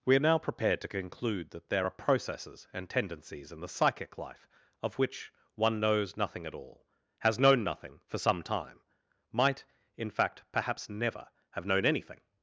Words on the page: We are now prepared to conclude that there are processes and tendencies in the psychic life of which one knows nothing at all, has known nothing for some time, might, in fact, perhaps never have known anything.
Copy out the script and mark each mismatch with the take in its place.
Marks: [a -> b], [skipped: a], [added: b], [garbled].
We are now prepared to conclude that there are processes and tendencies in the psychic life of which one knows nothing at all, has known nothing for some time, might, in fact, perhaps never have known anything.